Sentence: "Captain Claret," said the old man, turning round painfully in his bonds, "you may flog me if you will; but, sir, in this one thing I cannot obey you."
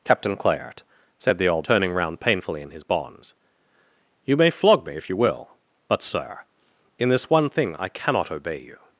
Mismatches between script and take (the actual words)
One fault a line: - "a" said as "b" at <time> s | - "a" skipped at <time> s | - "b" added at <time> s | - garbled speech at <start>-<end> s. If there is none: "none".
- "man" skipped at 1.6 s